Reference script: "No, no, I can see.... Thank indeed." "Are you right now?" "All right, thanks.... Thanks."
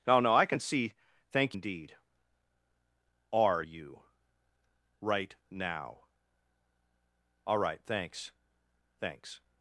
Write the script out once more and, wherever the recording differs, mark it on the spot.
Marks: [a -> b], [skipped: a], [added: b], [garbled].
"No, no, I can see.... Thank indeed." "Are you right now?" "All right, thanks.... Thanks."